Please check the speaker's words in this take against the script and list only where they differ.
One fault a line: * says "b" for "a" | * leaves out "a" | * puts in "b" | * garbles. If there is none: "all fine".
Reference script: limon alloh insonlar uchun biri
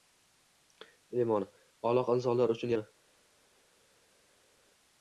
all fine